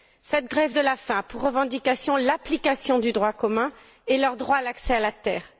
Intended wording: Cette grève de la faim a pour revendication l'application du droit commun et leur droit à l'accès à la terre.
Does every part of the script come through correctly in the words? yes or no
yes